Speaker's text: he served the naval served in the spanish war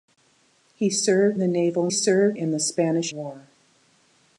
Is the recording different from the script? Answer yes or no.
no